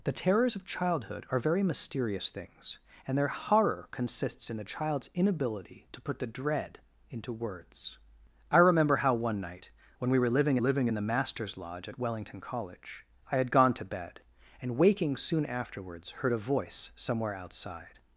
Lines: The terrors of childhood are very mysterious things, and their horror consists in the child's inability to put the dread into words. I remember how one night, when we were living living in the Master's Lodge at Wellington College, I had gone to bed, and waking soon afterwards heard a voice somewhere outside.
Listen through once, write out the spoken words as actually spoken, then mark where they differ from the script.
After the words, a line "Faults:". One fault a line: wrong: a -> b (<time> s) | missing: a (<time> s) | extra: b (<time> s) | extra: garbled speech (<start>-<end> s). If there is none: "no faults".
The terrors of childhood are very mysterious things, and their horror consists in the child's inability to put the dread into words. I remember how one night, when we were living living in the Master's Lodge at Wellington College, I had gone to bed, and waking soon afterwards heard a voice somewhere outside.
Faults:
no faults